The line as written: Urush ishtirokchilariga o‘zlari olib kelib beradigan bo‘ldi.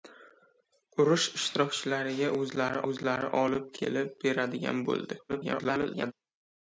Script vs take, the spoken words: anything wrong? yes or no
yes